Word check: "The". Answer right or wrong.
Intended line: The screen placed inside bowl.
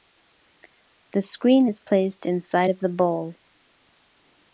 right